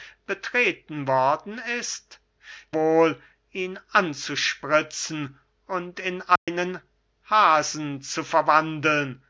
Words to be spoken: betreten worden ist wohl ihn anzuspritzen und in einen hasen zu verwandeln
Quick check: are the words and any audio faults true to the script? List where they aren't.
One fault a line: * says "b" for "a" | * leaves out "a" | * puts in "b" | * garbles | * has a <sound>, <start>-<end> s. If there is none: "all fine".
* has a dropout, 6.4-6.5 s